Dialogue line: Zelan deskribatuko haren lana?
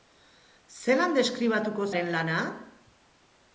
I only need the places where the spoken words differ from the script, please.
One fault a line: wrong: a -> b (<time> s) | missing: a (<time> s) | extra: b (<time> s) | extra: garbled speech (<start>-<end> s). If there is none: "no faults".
no faults